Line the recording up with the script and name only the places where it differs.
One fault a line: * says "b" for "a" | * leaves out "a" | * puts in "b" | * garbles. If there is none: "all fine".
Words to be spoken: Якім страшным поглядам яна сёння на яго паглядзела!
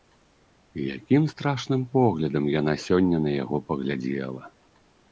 all fine